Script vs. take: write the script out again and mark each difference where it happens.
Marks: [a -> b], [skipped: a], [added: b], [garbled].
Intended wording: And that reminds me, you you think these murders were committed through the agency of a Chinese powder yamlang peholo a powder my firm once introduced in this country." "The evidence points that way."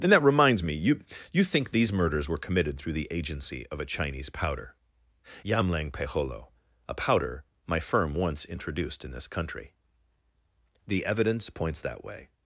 And that reminds me, you you think these murders were committed through the agency of a Chinese powder yamlang peholo a powder my firm once introduced in this country." "The evidence points that way."